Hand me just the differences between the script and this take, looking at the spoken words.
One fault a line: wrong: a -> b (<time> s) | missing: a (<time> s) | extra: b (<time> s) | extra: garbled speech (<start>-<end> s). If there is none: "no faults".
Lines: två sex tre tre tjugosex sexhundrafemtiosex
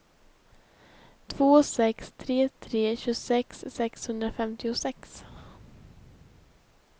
no faults